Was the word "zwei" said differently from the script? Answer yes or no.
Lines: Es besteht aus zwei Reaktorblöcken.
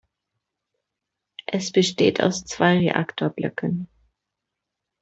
no